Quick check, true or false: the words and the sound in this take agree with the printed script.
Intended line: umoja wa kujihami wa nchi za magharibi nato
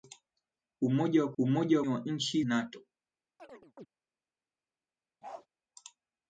false